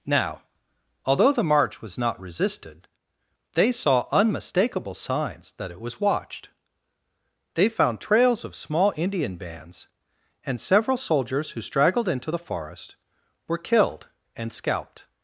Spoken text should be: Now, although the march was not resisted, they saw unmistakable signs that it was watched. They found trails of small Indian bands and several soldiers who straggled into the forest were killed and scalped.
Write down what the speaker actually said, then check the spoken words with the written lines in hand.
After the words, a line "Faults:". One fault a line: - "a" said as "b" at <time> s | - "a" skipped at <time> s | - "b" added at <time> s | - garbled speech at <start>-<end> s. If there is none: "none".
Now, although the march was not resisted, they saw unmistakable signs that it was watched. They found trails of small Indian bands and several soldiers who straggled into the forest were killed and scalped.
Faults:
none